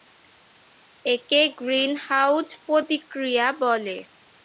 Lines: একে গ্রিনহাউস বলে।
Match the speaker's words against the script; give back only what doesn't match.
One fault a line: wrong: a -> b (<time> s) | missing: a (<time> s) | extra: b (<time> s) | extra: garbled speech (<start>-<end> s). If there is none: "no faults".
extra: প্রতিক্রিয়া (2.6 s)